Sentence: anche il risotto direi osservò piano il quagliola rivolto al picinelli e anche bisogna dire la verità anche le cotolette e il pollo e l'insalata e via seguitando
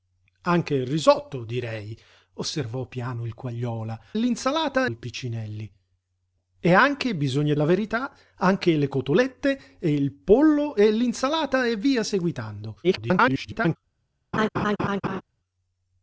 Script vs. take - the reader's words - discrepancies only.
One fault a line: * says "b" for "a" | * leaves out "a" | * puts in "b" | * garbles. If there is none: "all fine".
* says "l'insalata" for "rivolto"
* leaves out "dire"
* garbles